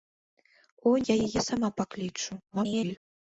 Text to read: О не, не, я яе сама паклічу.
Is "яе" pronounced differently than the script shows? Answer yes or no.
no